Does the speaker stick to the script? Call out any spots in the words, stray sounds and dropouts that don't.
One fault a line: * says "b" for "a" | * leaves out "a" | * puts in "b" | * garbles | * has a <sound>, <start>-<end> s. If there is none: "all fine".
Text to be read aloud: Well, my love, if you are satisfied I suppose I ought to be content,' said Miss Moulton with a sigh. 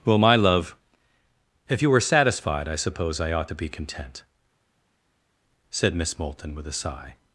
* says "were" for "are"